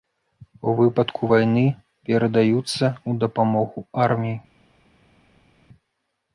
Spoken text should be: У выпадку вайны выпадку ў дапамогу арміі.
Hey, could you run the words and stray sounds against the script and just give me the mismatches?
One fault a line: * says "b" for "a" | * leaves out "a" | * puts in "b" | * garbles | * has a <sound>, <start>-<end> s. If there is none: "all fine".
* says "перадаюцца" for "выпадку"